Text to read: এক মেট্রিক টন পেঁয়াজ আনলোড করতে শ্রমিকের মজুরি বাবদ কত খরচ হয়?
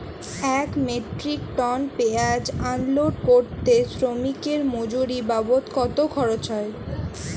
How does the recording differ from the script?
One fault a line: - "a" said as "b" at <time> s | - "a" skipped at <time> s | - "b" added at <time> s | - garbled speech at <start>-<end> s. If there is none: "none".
none